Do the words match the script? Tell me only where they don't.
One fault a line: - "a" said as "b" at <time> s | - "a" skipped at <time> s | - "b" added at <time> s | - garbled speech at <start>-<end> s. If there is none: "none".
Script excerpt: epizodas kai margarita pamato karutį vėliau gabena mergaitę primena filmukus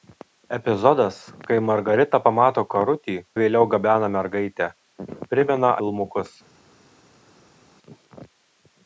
none